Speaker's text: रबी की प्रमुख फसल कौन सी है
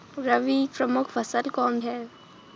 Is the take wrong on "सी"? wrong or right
wrong